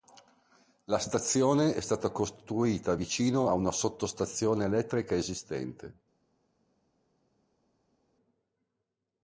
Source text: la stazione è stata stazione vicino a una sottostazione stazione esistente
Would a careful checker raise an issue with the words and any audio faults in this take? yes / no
yes